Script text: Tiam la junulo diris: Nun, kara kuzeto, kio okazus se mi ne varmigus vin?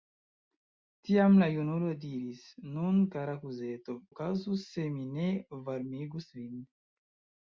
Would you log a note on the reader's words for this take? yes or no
yes